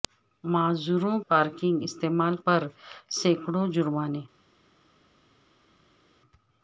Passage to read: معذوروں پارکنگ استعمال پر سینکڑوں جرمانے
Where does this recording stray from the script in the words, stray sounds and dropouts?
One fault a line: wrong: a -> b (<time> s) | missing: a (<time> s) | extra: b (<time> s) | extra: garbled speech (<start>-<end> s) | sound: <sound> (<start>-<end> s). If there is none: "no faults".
no faults